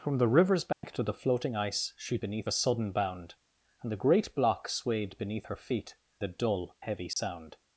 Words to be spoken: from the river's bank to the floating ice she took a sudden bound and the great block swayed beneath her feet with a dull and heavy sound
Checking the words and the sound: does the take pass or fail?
fail